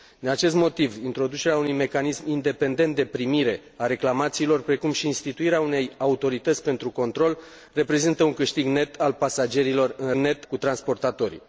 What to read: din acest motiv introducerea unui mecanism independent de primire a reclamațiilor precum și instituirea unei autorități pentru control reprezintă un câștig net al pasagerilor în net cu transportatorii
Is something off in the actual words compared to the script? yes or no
no